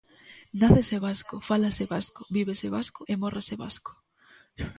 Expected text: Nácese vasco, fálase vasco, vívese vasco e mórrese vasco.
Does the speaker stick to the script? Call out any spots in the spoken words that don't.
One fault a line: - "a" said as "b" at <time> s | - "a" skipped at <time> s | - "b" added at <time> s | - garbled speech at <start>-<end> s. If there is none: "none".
none